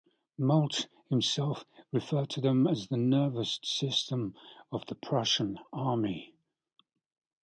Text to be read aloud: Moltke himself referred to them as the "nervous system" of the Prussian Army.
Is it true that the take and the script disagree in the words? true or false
false